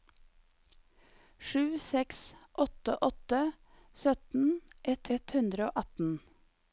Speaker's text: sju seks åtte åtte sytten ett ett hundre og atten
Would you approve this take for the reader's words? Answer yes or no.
yes